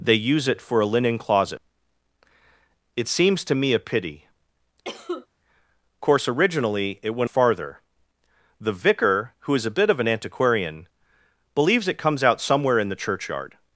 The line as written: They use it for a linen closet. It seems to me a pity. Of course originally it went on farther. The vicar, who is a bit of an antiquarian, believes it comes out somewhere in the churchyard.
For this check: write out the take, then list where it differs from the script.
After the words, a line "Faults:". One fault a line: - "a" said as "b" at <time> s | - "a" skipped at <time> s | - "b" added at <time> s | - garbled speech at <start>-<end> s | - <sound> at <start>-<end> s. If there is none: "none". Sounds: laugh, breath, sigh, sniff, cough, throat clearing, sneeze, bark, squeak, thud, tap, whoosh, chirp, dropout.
They use it for a linen closet. It seems to me a pity. Course originally it went farther. The vicar, who is a bit of an antiquarian, believes it comes out somewhere in the churchyard.
Faults:
- "Of" skipped at 4.2 s
- cough at 4.8-5.3 s
- "on" skipped at 7.3 s